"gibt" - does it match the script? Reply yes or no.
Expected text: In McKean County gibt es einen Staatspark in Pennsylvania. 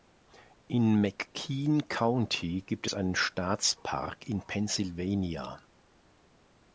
yes